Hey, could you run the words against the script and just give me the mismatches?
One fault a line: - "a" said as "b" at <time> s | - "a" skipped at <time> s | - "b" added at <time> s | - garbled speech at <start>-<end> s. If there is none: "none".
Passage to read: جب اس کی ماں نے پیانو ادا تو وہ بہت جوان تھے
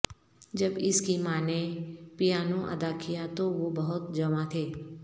- "کیا" added at 3.0 s